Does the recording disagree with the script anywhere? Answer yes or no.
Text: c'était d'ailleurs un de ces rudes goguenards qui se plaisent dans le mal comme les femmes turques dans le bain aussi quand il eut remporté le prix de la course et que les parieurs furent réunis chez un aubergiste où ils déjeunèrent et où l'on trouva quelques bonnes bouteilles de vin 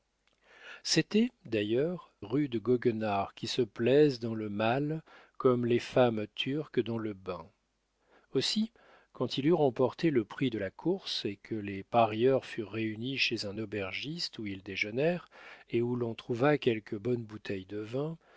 yes